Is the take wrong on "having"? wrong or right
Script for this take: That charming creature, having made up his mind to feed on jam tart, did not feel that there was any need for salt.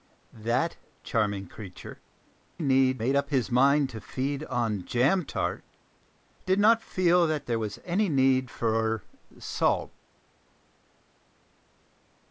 wrong